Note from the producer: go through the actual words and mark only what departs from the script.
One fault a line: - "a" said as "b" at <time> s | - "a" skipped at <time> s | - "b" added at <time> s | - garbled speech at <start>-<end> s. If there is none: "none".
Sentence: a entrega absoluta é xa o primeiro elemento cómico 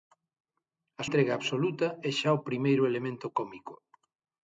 none